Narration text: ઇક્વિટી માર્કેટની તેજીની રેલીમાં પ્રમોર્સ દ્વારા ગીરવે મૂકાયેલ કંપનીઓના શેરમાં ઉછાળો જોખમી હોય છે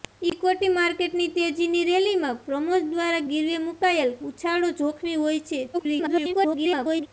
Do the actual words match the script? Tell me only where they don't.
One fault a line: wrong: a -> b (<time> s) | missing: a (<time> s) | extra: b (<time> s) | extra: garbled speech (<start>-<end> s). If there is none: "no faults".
missing: કંપનીઓના શેરમાં (4.1 s)
extra: garbled speech (5.7-7.1 s)